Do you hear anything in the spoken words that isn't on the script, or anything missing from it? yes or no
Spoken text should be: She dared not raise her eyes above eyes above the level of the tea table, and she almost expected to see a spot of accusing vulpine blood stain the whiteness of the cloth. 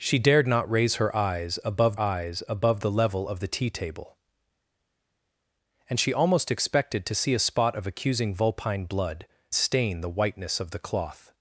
no